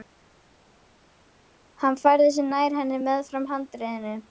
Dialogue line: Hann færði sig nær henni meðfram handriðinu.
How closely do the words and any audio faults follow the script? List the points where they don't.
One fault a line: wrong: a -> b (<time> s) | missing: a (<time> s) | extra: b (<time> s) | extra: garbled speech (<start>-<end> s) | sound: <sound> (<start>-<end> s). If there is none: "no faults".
no faults